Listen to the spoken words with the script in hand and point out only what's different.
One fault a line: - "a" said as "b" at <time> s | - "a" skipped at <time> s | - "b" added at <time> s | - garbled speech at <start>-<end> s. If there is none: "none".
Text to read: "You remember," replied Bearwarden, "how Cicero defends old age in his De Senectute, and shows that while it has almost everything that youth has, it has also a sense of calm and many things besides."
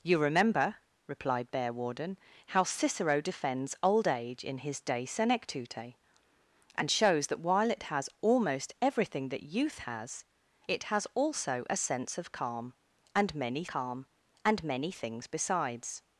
- "calm and many" added at 13.7 s